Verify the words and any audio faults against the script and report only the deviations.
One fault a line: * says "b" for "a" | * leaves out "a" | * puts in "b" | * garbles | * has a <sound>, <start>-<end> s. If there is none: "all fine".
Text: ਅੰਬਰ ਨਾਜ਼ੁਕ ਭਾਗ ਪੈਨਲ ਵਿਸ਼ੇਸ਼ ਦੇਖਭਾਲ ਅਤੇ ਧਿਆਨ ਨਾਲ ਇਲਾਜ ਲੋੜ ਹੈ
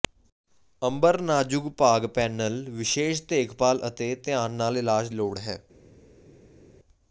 all fine